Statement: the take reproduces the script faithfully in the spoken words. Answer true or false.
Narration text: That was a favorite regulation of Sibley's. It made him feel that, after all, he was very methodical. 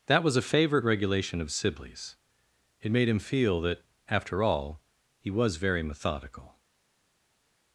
true